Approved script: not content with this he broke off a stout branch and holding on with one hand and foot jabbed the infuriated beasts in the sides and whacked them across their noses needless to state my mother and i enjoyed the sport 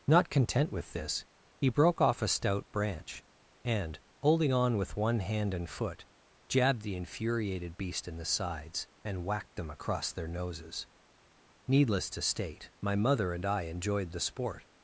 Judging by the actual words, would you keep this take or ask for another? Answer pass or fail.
fail